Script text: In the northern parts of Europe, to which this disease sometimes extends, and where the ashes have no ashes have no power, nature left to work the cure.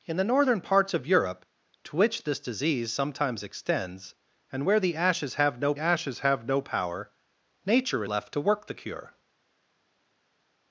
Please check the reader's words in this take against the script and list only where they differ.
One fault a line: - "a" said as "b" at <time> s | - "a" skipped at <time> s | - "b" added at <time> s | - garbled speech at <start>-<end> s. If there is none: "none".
none